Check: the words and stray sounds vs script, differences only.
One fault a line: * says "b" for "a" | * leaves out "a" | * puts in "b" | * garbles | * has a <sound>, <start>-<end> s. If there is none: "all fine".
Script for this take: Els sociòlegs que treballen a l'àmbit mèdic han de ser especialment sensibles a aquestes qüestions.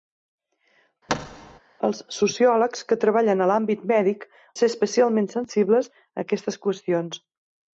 * has a thud, 1.1-1.6 s
* leaves out "han"